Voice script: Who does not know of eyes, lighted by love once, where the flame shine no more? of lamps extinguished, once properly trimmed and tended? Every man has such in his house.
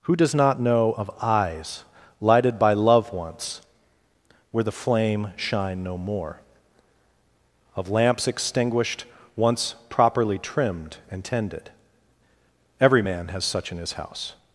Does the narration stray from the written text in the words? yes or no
no